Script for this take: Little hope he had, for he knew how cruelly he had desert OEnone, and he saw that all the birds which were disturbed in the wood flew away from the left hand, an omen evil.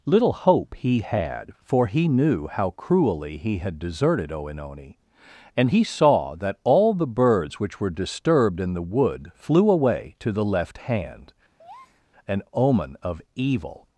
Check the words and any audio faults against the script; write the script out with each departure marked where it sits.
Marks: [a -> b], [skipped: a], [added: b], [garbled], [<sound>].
Little hope he had, for he knew how cruelly he had [desert -> deserted] OEnone, and he saw that all the birds which were disturbed in the wood flew away [from -> to] the left hand, [breath] an omen [added: of] evil.